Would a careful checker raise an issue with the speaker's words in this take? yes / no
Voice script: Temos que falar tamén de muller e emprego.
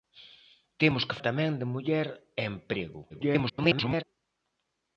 yes